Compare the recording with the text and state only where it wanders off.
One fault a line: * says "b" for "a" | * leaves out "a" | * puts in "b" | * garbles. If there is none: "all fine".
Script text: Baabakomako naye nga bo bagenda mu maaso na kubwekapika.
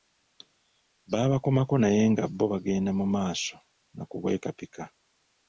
all fine